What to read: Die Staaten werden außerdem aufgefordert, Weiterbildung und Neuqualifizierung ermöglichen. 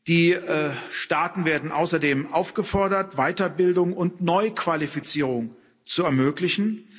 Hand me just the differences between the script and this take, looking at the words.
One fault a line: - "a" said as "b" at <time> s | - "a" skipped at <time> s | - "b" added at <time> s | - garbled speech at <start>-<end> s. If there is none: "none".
- "zu" added at 5.8 s